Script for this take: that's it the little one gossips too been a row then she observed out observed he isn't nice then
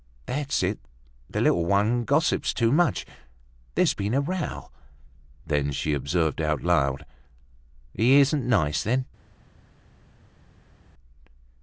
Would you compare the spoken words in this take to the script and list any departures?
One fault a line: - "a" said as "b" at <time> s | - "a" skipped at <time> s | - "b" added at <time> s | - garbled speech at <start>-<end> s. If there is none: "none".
- "much there's" added at 2.7 s
- "observed" said as "loud" at 6.6 s